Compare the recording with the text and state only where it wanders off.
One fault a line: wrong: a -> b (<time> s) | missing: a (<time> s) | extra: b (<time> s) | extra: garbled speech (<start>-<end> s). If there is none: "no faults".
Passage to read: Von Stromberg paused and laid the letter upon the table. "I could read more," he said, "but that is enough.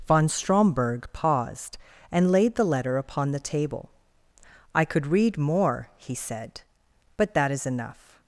no faults